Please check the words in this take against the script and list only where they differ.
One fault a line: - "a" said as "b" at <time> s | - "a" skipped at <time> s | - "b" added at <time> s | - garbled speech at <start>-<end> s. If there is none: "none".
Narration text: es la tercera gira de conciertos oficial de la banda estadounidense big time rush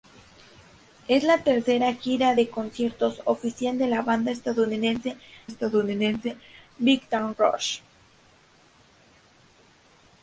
- "estadounidense" added at 5.4 s